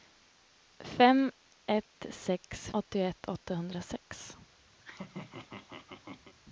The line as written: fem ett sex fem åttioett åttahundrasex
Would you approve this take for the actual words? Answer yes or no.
no